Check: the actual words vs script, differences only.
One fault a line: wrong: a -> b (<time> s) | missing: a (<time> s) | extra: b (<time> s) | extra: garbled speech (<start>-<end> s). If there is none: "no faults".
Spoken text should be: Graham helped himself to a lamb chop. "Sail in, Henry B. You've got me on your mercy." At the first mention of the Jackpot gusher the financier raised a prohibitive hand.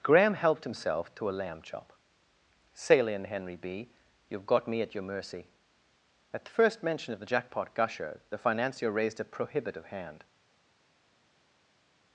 wrong: on -> at (4.8 s)